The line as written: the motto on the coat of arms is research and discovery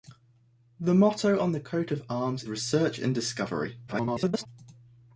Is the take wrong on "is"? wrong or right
wrong